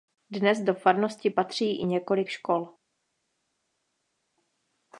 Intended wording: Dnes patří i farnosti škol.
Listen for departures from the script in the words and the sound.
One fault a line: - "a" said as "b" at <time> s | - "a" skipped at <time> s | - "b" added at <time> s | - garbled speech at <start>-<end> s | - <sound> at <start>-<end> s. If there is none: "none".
- "do farnosti" added at 0.6 s
- "farnosti" said as "několik" at 1.8 s